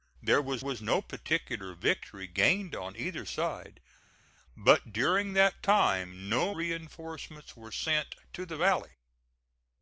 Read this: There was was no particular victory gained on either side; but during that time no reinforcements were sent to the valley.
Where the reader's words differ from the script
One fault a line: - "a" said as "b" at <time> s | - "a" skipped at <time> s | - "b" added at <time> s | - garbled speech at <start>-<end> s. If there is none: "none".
none